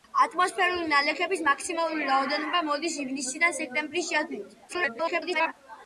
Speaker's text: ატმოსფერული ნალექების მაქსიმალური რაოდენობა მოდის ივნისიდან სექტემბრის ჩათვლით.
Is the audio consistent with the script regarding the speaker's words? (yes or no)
no